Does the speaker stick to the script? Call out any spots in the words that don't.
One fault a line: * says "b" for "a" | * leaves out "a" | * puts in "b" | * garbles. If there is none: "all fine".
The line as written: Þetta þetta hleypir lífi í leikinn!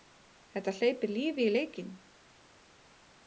* leaves out "þetta"